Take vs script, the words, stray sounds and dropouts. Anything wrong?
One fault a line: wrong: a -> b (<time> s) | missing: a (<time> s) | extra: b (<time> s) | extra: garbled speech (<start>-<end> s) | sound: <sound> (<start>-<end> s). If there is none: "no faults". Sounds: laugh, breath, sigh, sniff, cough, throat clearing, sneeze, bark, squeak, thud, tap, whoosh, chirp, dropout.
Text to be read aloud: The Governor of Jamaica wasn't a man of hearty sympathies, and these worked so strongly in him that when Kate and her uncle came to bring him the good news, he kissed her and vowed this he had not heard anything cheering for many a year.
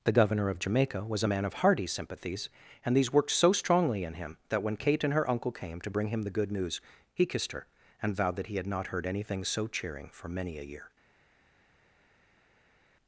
wrong: wasn't -> was (1.1 s)
wrong: this -> that (8.4 s)
extra: so (9.4 s)